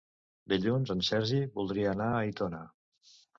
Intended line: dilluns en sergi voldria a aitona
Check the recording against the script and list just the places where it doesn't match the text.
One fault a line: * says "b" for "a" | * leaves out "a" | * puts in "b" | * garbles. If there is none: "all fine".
* puts in "anar"